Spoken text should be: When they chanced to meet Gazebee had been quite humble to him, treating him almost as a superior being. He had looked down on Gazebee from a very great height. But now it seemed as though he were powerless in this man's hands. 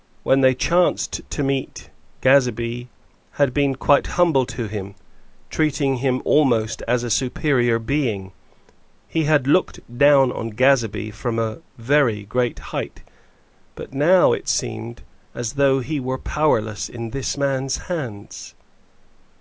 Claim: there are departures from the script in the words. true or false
false